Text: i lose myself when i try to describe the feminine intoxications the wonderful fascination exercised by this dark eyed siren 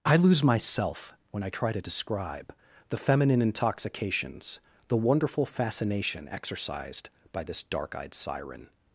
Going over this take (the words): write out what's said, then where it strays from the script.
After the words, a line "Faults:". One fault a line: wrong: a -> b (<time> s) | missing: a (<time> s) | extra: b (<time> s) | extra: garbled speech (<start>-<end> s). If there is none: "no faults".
i lose myself when i try to describe the feminine intoxications the wonderful fascination exercised by this dark eyed siren
Faults:
no faults